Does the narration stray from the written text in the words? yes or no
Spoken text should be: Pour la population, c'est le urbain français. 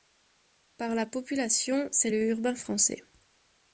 yes